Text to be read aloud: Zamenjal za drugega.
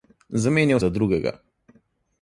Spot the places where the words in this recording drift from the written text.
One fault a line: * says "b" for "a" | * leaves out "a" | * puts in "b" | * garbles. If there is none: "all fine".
all fine